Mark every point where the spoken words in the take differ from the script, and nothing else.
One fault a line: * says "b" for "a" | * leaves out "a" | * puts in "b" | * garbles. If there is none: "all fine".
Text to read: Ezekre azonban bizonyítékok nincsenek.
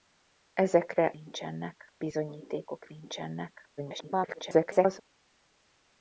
* says "nincsenek" for "azonban"
* garbles